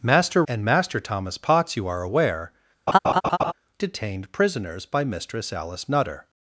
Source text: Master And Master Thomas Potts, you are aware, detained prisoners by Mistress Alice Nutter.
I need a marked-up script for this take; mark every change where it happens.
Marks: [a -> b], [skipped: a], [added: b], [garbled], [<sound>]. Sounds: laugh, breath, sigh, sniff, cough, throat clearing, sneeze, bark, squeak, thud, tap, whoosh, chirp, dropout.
Master And Master Thomas Potts, you are aware, [laugh] detained prisoners by Mistress Alice Nutter.